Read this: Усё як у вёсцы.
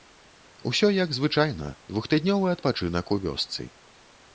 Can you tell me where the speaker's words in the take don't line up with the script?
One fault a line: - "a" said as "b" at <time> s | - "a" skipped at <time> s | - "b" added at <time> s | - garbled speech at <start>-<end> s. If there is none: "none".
- "звычайна двухтыднёвы адпачынак" added at 1.2 s